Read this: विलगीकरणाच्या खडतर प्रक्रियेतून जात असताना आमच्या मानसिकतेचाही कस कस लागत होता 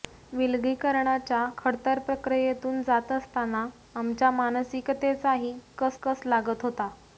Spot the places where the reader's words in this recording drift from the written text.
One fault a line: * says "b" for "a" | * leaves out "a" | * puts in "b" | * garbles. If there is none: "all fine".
all fine